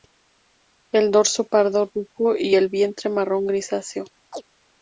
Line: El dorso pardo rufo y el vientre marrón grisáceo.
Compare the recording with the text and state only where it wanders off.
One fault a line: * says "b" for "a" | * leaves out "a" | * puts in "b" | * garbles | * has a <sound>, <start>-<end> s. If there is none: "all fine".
* has a chirp, 4.3-4.4 s